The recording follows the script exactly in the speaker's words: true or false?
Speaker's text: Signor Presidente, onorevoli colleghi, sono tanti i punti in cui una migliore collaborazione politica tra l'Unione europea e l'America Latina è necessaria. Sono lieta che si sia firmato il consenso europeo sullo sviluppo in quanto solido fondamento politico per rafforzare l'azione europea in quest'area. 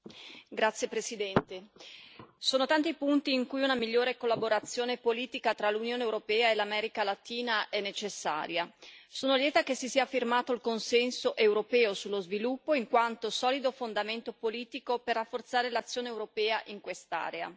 true